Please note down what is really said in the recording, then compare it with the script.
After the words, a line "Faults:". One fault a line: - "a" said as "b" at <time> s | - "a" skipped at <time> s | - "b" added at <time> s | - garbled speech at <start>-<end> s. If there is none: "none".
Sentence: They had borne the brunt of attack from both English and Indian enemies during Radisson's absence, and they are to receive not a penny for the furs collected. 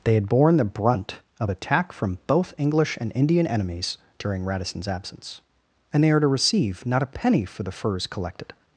They had borne the brunt of attack from both English and Indian enemies during Radisson's absence, and they are to receive not a penny for the furs collected.
Faults:
none